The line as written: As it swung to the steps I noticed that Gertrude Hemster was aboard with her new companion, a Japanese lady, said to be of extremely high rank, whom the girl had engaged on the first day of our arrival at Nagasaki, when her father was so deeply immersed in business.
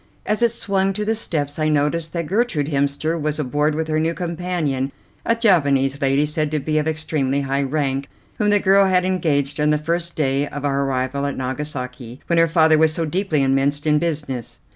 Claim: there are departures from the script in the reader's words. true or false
false